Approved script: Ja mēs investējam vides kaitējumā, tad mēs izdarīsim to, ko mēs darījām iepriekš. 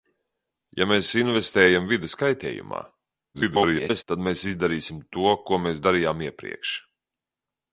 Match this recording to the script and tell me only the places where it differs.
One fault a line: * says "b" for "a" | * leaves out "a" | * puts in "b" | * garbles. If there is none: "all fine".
* garbles